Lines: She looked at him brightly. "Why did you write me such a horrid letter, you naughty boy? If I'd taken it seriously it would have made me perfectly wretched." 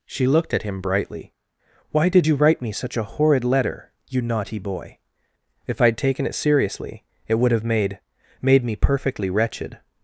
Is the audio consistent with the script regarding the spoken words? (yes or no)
no